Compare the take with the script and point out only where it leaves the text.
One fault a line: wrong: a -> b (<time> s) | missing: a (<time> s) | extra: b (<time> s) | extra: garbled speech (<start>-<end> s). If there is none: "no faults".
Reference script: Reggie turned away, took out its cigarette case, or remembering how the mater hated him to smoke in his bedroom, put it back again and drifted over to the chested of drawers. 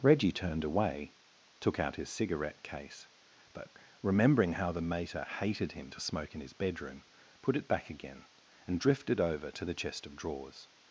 wrong: its -> his (1.9 s)
wrong: or -> but (3.5 s)
wrong: chested -> chest (9.7 s)